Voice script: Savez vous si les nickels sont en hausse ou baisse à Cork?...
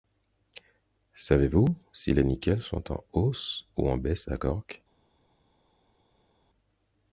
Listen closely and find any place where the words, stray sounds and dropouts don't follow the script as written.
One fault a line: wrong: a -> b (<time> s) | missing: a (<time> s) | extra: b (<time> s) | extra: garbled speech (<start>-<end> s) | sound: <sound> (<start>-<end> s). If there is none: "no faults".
extra: en (3.9 s)